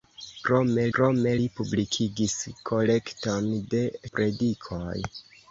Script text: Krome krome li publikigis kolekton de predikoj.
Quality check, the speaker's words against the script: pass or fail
pass